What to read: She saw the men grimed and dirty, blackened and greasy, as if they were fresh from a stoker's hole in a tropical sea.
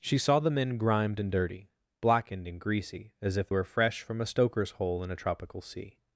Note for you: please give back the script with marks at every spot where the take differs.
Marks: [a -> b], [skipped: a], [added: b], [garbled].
She saw the men grimed and dirty, blackened and greasy, as if [skipped: they] were fresh from a stoker's hole in a tropical sea.